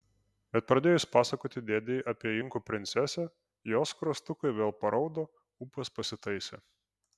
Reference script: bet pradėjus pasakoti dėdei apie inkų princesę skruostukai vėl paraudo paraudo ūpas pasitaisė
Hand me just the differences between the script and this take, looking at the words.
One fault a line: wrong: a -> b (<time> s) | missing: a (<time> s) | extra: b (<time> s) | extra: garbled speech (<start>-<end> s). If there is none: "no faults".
extra: jos (3.7 s)
missing: paraudo (5.3 s)